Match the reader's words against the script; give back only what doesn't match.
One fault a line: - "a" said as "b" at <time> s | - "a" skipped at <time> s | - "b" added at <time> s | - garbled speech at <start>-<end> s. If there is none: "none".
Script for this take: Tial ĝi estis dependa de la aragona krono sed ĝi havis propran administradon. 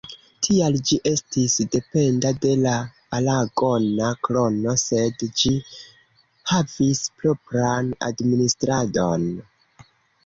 none